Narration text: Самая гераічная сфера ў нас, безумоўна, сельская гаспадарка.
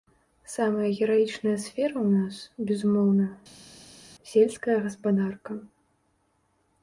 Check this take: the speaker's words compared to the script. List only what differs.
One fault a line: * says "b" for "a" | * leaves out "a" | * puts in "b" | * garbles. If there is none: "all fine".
all fine